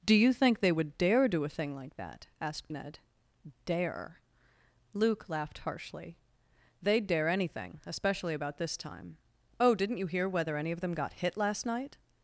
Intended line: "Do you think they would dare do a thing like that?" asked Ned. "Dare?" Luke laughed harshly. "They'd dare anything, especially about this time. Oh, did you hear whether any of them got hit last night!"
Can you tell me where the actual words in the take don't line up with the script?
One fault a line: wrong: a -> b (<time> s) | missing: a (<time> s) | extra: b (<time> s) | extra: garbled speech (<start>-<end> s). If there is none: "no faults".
wrong: did -> didn't (9.8 s)